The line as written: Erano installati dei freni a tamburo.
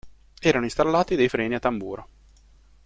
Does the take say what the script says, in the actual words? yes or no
yes